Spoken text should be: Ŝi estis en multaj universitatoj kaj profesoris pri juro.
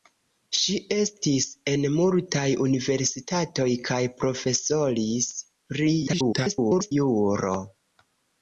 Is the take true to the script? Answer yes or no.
no